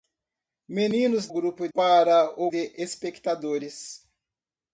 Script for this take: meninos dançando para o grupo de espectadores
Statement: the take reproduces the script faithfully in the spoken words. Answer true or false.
false